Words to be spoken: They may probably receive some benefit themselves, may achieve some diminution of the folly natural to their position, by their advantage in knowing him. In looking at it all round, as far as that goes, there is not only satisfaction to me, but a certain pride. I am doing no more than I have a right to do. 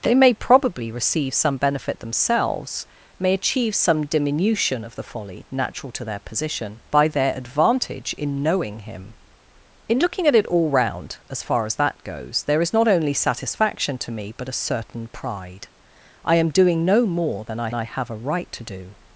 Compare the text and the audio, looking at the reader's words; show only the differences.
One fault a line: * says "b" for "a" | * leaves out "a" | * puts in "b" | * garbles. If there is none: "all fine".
* puts in "I"